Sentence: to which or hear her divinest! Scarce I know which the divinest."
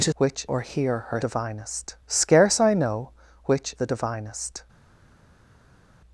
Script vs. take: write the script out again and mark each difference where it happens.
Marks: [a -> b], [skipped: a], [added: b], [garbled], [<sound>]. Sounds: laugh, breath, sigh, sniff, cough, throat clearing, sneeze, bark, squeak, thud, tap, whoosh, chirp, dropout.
to which or hear her divinest! Scarce I know which the divinest."